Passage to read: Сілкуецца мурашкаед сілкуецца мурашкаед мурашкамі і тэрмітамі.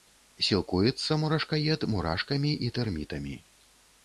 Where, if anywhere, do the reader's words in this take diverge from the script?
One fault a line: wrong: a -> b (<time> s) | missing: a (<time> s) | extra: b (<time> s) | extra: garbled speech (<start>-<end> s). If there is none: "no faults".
missing: сілкуецца мурашкаед (1.9 s)